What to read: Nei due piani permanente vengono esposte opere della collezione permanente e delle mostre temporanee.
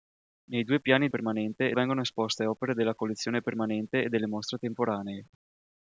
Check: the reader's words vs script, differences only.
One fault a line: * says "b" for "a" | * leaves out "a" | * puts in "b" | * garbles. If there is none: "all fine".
all fine